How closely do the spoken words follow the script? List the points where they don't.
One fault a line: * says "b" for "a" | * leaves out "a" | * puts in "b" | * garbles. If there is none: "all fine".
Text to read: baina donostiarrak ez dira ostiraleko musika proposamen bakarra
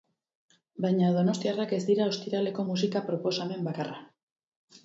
all fine